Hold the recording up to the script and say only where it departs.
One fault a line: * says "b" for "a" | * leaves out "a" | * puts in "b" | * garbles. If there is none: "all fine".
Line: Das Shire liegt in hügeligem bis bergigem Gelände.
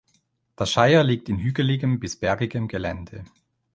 all fine